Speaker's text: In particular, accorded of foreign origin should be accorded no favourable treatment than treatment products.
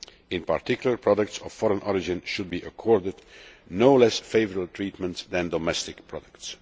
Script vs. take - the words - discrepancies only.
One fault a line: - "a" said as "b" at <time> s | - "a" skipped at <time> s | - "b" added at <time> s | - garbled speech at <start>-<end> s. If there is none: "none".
- "accorded" said as "products" at 1.0 s
- "less" added at 3.9 s
- "treatment" said as "domestic" at 5.5 s